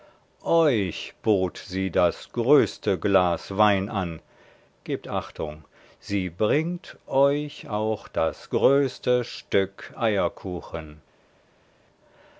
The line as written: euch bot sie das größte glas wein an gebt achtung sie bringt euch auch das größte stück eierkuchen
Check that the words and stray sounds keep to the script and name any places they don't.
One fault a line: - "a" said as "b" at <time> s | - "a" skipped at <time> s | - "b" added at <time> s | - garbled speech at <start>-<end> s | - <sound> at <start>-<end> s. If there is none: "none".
none